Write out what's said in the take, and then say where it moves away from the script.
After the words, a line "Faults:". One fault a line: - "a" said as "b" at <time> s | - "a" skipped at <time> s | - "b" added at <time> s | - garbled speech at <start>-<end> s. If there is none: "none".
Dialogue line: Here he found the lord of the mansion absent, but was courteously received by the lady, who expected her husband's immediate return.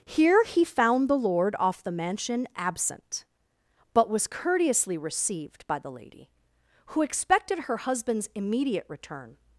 Here he found the lord off the mansion absent, but was courteously received by the lady, who expected her husband's immediate return.
Faults:
- "of" said as "off" at 1.6 s